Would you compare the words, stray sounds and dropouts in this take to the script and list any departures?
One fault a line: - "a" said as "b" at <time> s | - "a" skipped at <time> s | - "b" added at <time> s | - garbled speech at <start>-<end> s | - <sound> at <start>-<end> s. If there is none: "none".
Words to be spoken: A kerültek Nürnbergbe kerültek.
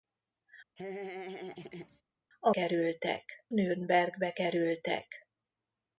- laugh at 0.8-2.0 s